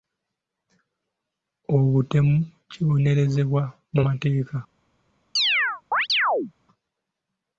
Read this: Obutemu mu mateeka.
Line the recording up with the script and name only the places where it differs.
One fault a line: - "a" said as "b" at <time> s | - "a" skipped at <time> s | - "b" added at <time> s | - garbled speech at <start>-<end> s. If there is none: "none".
- "kibonerezebwa" added at 2.7 s